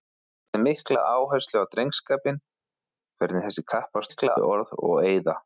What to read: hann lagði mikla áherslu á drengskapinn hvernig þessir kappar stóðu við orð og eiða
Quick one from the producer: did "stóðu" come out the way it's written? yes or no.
no